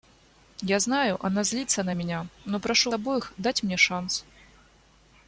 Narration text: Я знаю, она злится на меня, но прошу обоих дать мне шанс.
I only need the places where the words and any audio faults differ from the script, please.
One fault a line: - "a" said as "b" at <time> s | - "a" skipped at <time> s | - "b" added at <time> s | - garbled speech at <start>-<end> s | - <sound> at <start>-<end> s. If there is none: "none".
none